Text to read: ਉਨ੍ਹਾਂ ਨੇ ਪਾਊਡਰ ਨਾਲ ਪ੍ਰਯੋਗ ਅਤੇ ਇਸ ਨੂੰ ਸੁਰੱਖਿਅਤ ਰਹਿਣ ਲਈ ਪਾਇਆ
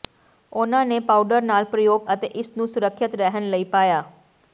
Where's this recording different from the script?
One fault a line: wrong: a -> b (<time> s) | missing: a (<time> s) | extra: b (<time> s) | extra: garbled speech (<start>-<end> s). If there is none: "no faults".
no faults